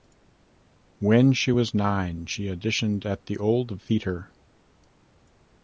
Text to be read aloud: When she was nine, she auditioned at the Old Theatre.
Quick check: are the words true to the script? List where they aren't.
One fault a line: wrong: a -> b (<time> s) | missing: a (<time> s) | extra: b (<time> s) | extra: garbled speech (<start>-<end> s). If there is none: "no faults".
no faults